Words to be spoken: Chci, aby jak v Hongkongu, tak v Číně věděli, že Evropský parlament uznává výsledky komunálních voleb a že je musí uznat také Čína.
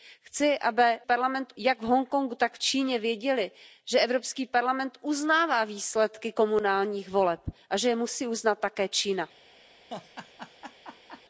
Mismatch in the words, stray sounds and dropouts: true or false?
true